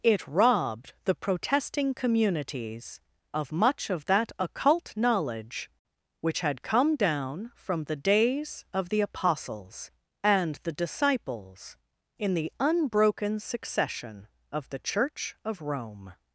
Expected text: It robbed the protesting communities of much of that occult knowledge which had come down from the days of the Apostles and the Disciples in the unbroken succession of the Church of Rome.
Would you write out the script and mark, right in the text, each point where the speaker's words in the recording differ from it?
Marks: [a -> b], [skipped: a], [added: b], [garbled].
It robbed the protesting communities of much of that occult knowledge which had come down from the days of the Apostles and the Disciples in the unbroken succession of the Church of Rome.